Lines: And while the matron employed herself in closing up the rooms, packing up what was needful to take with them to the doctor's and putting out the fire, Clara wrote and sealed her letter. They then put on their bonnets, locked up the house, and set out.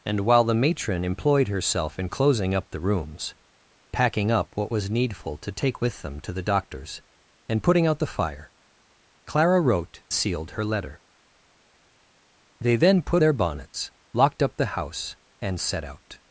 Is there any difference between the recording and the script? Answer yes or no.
yes